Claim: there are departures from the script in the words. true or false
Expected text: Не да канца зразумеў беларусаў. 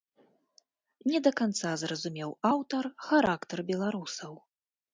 true